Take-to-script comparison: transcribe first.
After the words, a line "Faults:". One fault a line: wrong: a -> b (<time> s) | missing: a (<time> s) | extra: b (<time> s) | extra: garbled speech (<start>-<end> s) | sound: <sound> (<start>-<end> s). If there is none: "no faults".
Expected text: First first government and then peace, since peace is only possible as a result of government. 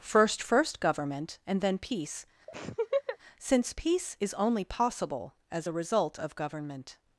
First first government and then peace, since peace is only possible as a result of government.
Faults:
sound: laugh (2.5-3.2 s)